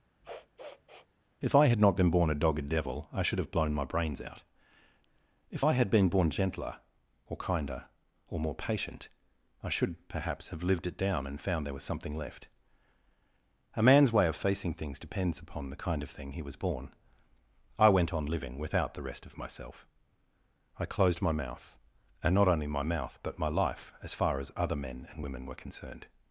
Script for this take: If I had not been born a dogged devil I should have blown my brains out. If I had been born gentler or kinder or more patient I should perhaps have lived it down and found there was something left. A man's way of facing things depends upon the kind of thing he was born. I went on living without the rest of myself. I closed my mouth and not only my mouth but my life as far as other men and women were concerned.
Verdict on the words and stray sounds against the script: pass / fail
fail